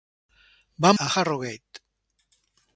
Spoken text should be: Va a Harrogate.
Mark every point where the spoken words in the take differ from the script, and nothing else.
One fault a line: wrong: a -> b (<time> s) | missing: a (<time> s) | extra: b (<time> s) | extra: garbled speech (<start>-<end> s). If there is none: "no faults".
no faults